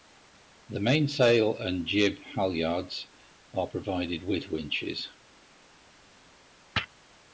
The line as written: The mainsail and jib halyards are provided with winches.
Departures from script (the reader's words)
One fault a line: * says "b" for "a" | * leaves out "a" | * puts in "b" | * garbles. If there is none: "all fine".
all fine